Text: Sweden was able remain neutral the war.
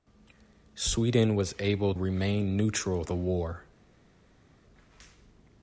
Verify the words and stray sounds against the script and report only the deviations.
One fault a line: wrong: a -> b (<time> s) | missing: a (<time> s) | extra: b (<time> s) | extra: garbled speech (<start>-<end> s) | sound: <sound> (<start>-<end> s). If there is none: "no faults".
no faults